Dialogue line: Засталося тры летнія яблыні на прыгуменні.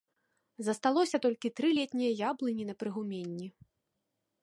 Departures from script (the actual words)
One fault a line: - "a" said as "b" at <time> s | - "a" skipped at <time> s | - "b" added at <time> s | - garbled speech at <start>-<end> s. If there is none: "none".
- "толькі" added at 1.2 s